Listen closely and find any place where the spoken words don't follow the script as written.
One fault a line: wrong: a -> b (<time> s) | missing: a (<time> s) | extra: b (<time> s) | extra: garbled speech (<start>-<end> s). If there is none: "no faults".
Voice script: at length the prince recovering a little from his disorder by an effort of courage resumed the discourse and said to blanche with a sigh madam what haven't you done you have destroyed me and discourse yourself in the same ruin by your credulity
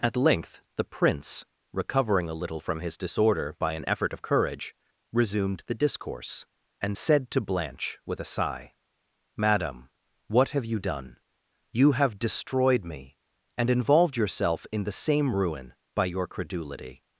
wrong: haven't -> have (10.5 s)
wrong: discourse -> involved (13.7 s)